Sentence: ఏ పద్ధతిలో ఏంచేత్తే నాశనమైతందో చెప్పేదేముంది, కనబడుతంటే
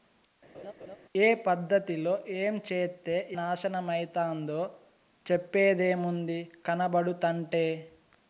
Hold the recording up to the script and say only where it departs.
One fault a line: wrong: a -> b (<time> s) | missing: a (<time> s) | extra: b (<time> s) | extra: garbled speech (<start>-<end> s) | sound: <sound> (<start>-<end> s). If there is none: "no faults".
sound: laugh (0.5-1.0 s)